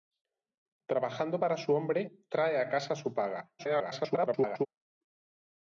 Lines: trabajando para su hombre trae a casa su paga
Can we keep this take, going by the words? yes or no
no